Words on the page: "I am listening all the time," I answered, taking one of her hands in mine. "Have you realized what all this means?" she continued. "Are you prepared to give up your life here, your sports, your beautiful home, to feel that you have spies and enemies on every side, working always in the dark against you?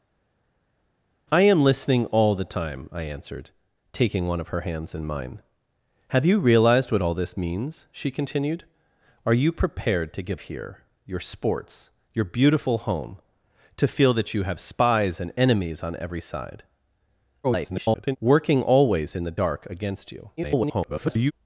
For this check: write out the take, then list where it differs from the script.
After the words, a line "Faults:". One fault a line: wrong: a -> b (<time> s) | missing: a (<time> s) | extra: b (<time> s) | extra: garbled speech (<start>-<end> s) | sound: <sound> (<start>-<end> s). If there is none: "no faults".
"I am listening all the time," I answered, taking one of her hands in mine. "Have you realized what all this means?" she continued. "Are you prepared to give here, your sports, your beautiful home, to feel that you have spies and enemies on every side, [garbled] working always in the dark against you? [garbled]
Faults:
missing: up your life (10.4 s)
extra: garbled speech (17.4-18.2 s)
extra: garbled speech (20.4-21.3 s)